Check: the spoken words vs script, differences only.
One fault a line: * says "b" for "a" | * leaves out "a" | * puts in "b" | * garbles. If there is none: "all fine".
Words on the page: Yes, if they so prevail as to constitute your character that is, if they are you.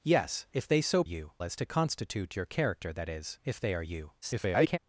* says "you" for "prevail"
* garbles